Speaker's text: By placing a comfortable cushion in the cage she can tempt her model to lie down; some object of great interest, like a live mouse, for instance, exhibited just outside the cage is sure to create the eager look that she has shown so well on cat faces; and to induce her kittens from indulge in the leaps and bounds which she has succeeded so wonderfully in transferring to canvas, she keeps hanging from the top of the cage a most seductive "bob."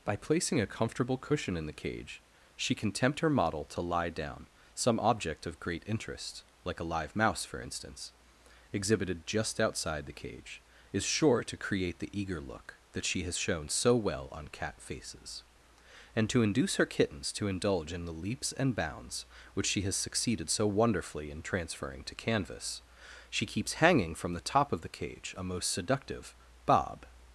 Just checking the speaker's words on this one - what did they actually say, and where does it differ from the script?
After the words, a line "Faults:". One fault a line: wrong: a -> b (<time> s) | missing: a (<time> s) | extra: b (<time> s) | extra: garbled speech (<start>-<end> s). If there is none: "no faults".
By placing a comfortable cushion in the cage she can tempt her model to lie down; some object of great interest, like a live mouse, for instance, exhibited just outside the cage is sure to create the eager look that she has shown so well on cat faces; and to induce her kittens to indulge in the leaps and bounds which she has succeeded so wonderfully in transferring to canvas, she keeps hanging from the top of the cage a most seductive "bob."
Faults:
wrong: from -> to (17.3 s)